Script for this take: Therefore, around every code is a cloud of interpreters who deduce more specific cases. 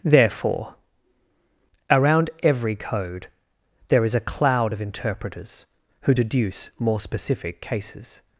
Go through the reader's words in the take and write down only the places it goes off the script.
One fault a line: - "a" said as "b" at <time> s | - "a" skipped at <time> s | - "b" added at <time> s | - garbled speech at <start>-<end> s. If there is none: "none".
- "there" added at 3.9 s